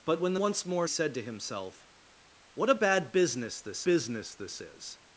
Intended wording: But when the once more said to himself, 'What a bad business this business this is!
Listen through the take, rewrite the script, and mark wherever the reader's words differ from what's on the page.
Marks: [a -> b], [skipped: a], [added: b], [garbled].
But when the once more said to himself, 'What a bad business this business this is!